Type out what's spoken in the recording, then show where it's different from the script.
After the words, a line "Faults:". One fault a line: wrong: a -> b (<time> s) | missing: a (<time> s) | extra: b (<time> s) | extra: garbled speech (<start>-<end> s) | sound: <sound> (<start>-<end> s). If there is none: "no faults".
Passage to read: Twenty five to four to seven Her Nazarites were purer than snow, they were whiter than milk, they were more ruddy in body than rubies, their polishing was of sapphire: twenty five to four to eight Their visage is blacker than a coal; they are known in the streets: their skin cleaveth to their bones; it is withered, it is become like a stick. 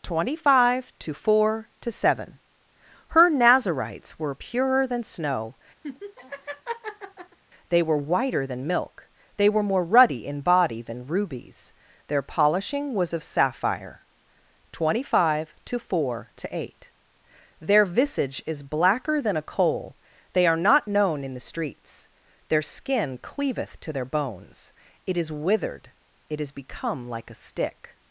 Twenty five to four to seven Her Nazarites were purer than snow, they were whiter than milk, they were more ruddy in body than rubies, their polishing was of sapphire: twenty five to four to eight Their visage is blacker than a coal; they are not known in the streets: their skin cleaveth to their bones; it is withered, it is become like a stick.
Faults:
sound: laugh (5.8-7.4 s)
extra: not (20.6 s)